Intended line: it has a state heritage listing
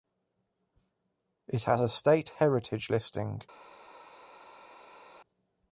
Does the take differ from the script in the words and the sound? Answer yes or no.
no